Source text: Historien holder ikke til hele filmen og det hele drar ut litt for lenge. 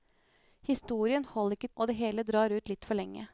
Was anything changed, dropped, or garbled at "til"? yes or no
yes